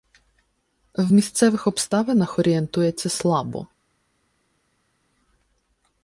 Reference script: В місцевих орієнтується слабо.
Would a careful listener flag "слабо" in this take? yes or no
no